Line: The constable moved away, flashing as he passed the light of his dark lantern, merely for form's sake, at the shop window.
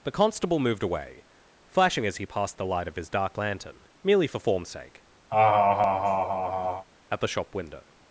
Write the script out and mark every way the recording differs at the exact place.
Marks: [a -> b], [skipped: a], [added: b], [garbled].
The constable moved away, flashing as he passed the light of his dark lantern, merely for form's sake, at the shop window.